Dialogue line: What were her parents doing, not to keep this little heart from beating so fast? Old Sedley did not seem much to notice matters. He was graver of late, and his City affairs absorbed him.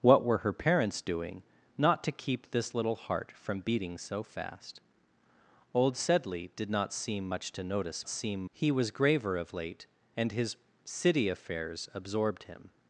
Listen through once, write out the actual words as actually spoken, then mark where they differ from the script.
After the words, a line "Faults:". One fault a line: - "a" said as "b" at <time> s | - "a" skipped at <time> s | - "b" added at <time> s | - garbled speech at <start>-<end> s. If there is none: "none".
What were her parents doing, not to keep this little heart from beating so fast? Old Sedley did not seem much to notice seem. He was graver of late, and his City affairs absorbed him.
Faults:
- "matters" said as "seem" at 8.1 s